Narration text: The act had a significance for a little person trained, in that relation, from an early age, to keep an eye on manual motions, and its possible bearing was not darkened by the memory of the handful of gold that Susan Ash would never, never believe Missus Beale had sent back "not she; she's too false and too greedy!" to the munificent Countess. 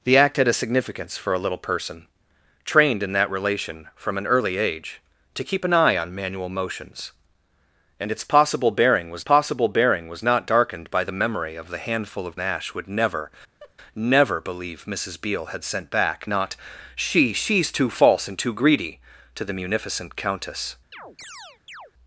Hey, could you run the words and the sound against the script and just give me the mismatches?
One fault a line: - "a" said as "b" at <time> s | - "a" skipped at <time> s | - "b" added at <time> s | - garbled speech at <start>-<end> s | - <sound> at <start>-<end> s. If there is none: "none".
- "possible bearing was" added at 9.2 s
- "gold that Susan" skipped at 12.4 s
- laugh at 13.6-13.7 s
- chirp at 20.9-21.9 s